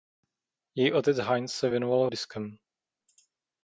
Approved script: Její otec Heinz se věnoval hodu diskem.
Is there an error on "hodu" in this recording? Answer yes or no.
yes